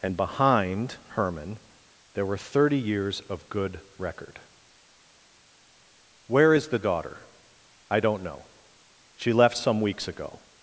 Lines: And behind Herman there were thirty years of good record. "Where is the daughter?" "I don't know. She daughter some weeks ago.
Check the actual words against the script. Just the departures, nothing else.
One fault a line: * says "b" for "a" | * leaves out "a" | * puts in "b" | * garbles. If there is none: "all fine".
* says "left" for "daughter"